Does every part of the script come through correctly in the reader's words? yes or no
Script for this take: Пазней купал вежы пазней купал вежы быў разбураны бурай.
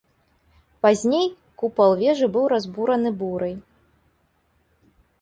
no